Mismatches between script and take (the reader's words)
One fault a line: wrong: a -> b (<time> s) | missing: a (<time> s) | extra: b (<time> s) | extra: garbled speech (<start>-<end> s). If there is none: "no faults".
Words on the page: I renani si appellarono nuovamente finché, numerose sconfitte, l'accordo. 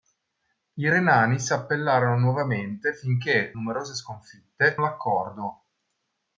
no faults